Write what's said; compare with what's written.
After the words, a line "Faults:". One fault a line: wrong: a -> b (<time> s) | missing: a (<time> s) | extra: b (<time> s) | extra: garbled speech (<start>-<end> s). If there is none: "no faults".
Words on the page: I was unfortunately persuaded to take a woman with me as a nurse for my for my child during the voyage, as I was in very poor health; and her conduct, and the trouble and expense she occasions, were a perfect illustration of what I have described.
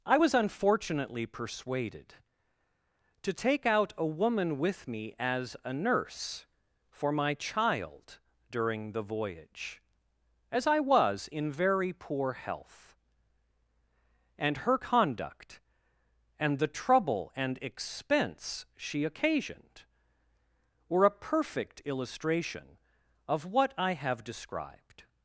I was unfortunately persuaded to take out a woman with me as a nurse for my child during the voyage, as I was in very poor health; and her conduct, and the trouble and expense she occasioned, were a perfect illustration of what I have described.
Faults:
extra: out (3.7 s)
missing: for my (7.3 s)
wrong: occasions -> occasioned (19.0 s)